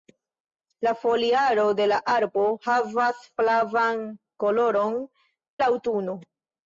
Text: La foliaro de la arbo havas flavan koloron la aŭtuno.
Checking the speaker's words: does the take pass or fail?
pass